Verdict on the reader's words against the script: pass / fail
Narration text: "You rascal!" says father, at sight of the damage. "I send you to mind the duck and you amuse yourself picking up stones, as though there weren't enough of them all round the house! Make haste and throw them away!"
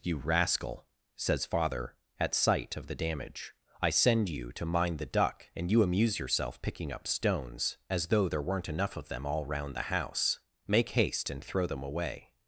pass